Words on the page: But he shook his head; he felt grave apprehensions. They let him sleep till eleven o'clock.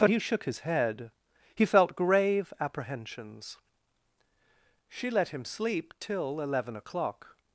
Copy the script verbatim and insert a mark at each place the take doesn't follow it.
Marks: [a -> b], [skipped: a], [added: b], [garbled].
But he shook his head; he felt grave apprehensions. [They -> She] let him sleep till eleven o'clock.